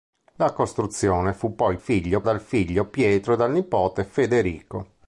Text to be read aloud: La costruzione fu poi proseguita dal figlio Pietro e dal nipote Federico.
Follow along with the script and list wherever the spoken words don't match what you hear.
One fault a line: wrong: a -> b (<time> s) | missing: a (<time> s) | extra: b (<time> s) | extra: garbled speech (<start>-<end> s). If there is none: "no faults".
wrong: proseguita -> figlio (1.8 s)